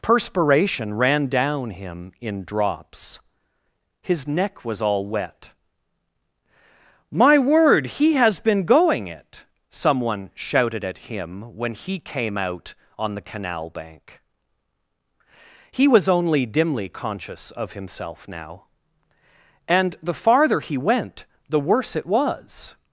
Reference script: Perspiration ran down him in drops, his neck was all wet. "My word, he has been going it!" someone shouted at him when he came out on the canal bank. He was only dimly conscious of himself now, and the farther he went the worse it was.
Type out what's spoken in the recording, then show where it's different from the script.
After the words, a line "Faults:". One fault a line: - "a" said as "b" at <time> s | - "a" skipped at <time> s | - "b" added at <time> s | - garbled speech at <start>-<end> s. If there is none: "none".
Perspiration ran down him in drops, his neck was all wet. "My word, he has been going it!" someone shouted at him when he came out on the canal bank. He was only dimly conscious of himself now, and the farther he went the worse it was.
Faults:
none